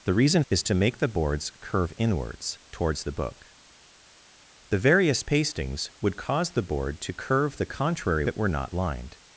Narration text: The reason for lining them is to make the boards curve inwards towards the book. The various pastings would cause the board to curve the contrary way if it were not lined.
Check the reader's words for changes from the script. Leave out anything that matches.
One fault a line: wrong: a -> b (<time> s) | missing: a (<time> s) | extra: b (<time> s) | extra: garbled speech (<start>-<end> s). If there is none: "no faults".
missing: for lining them (0.4 s)
missing: way if (8.2 s)